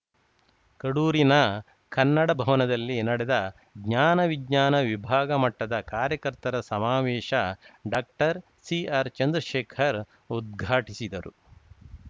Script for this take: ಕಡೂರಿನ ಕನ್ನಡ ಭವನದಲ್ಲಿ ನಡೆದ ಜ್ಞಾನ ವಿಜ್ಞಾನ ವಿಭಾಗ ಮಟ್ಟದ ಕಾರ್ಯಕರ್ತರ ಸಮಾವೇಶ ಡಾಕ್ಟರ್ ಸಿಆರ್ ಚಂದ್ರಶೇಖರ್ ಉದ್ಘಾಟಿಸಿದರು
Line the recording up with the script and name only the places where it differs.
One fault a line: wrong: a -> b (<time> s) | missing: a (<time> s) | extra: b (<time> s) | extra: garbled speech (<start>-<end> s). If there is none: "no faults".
no faults